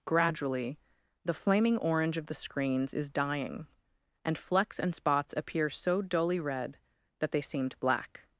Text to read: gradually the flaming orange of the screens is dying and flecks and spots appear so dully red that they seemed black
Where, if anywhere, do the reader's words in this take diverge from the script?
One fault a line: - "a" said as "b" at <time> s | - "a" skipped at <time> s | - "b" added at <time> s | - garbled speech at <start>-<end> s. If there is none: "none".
none